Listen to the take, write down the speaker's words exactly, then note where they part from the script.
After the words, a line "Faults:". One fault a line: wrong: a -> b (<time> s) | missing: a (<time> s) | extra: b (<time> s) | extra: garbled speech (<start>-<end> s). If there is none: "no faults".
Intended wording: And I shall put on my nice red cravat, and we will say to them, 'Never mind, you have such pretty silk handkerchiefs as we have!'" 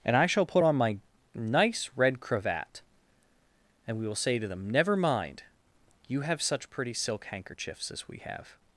And I shall put on my nice red cravat, and we will say to them, 'Never mind, you have such pretty silk handkerchiefs as we have!'"
Faults:
no faults